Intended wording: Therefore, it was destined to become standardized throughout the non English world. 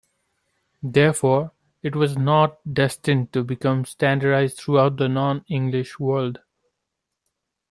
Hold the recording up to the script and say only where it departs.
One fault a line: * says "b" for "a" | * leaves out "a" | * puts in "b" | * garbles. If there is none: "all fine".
* puts in "not"